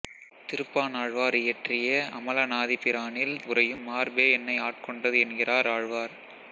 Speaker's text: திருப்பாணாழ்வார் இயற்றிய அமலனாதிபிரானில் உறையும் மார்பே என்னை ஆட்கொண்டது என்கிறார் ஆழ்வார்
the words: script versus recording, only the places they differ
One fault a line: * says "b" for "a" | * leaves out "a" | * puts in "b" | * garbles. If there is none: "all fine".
all fine